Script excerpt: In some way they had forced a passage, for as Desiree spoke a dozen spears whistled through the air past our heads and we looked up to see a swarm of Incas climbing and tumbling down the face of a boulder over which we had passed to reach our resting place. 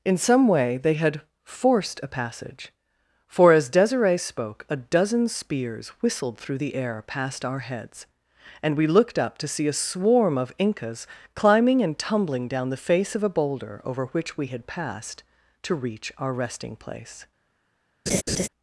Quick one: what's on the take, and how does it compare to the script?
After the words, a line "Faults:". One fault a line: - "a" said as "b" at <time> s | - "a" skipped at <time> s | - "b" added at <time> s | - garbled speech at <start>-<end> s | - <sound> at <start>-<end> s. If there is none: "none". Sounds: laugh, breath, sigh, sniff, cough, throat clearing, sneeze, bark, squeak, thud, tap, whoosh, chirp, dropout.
In some way they had forced a passage, for as Desiree spoke a dozen spears whistled through the air past our heads and we looked up to see a swarm of Incas climbing and tumbling down the face of a boulder over which we had passed to reach our resting place.
Faults:
- laugh at 18.1-18.5 s